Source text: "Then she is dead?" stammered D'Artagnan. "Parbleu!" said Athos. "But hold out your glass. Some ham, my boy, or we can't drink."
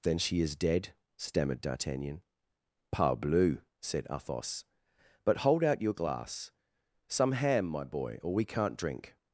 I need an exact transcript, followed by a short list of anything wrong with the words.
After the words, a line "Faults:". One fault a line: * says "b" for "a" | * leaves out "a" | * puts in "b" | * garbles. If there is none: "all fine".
"Then she is dead?" stammered D'Artagnan. "Parbleu!" said Athos. "But hold out your glass. Some ham, my boy, or we can't drink."
Faults:
all fine